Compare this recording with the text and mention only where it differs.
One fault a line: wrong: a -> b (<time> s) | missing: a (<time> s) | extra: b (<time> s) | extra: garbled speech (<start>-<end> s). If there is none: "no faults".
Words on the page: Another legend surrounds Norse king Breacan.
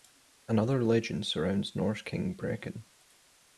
no faults